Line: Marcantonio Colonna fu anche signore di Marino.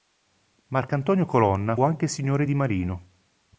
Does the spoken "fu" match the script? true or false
false